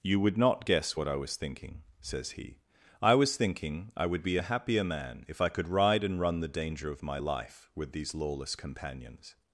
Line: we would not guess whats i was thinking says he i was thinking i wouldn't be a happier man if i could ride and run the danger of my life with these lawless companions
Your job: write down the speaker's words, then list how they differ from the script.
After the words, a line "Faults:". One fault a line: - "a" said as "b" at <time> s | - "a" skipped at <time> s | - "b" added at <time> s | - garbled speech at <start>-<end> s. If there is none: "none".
you would not guess what i was thinking says he i was thinking i would be a happier man if i could ride and run the danger of my life with these lawless companions
Faults:
- "we" said as "you" at 0.0 s
- "whats" said as "what" at 0.9 s
- "wouldn't" said as "would" at 4.0 s